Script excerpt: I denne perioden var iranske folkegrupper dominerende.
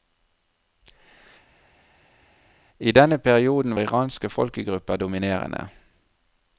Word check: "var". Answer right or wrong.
wrong